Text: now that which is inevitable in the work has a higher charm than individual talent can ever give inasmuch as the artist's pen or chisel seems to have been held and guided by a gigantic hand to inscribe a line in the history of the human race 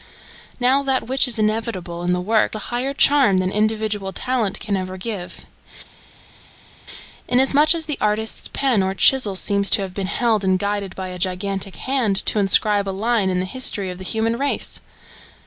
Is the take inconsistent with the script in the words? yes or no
yes